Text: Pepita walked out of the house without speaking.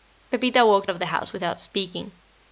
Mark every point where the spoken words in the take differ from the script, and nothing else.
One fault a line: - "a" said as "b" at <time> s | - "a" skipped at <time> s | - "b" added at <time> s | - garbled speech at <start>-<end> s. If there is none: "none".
- "out" skipped at 0.9 s